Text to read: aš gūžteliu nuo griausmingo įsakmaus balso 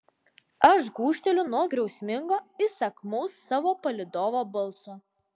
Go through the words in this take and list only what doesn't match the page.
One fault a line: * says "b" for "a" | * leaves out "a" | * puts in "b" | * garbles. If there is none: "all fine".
* puts in "savo palydovo"